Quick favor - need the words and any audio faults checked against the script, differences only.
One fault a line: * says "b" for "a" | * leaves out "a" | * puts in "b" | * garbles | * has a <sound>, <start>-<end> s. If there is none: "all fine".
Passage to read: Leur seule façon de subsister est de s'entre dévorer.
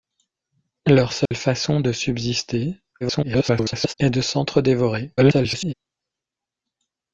* has a dropout, 1.3-1.3 s
* garbles
* garbles